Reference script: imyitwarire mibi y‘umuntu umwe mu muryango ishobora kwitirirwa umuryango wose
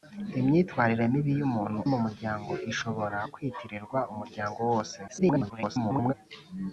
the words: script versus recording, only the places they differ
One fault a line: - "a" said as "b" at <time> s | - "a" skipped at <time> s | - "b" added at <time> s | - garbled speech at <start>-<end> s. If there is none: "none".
- "umwe" skipped at 1.8 s
- garbled speech at 5.1-6.1 s